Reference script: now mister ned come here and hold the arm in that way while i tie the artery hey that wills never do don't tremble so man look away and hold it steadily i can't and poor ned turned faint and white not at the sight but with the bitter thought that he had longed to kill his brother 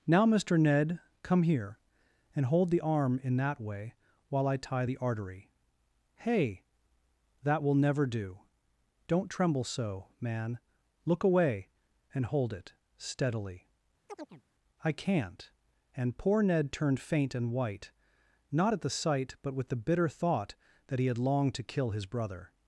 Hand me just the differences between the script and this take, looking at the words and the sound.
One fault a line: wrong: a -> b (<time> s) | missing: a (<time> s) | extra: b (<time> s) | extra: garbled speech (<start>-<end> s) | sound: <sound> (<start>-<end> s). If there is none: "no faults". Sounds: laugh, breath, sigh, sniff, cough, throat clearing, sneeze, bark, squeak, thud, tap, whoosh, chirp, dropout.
wrong: wills -> will (7.6 s)
sound: chirp (14.1-14.4 s)